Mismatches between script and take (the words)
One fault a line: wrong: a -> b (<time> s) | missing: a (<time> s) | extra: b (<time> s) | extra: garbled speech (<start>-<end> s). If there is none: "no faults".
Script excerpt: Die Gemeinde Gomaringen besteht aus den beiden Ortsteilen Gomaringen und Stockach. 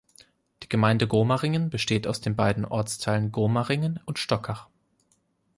no faults